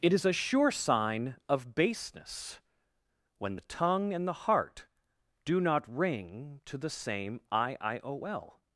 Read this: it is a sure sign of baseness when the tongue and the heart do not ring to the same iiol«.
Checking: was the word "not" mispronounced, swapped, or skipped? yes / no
no